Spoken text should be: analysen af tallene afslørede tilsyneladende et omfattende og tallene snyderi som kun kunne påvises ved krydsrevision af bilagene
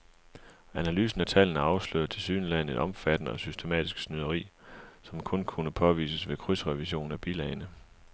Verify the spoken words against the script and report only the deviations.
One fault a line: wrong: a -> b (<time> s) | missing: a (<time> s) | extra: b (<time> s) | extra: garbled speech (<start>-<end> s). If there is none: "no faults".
wrong: tallene -> systematisk (3.4 s)